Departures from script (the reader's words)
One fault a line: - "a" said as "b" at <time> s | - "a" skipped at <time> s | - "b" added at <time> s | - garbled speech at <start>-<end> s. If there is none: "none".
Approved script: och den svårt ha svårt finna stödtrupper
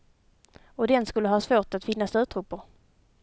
- "svårt" said as "skulle" at 1.1 s
- "att" added at 1.7 s